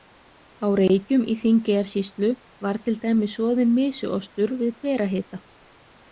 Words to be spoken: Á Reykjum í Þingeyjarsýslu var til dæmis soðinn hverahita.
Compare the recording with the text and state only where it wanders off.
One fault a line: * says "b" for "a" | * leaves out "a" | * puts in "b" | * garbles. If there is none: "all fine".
* puts in "mysuostur við"